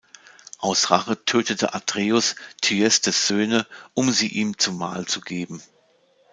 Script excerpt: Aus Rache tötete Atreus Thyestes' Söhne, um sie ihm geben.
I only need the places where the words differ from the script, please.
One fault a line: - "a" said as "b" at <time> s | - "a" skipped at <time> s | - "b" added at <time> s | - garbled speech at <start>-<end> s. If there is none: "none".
- "zum Mahl zu" added at 4.6 s